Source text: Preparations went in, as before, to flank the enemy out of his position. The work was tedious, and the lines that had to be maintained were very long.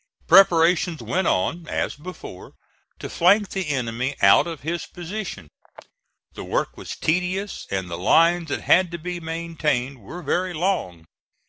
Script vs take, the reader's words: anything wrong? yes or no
yes